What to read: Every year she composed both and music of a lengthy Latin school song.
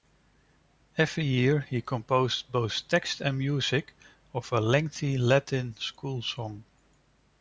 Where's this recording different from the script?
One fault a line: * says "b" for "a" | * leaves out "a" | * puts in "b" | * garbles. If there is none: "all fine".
* says "he" for "she"
* puts in "text"